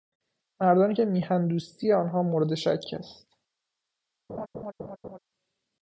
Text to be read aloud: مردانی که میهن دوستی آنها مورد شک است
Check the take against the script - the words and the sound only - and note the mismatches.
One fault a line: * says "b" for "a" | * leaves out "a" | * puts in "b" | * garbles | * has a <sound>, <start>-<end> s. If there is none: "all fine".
* has a laugh, 4.3-5.2 s